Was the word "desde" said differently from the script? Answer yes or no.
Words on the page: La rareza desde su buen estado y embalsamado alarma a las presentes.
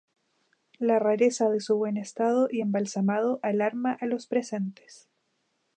yes